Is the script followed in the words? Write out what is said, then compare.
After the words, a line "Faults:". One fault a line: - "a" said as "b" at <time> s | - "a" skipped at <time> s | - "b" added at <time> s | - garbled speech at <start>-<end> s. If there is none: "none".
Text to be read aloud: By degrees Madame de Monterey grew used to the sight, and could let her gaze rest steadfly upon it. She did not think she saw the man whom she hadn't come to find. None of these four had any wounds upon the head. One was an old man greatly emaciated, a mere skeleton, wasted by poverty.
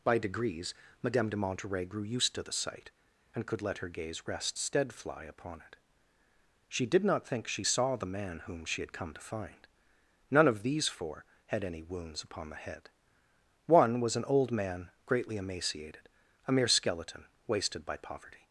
By degrees Madame de Monterey grew used to the sight, and could let her gaze rest steadfly upon it. She did not think she saw the man whom she had come to find. None of these four had any wounds upon the head. One was an old man greatly emaciated, a mere skeleton, wasted by poverty.
Faults:
- "hadn't" said as "had" at 8.8 s